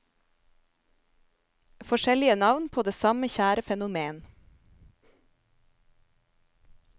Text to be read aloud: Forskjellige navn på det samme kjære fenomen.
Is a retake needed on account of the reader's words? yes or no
no